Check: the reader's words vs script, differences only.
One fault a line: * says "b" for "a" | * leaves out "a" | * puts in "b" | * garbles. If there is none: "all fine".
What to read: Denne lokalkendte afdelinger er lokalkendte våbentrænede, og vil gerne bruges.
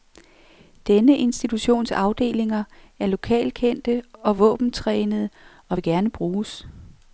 * says "institutions" for "lokalkendte"
* puts in "og"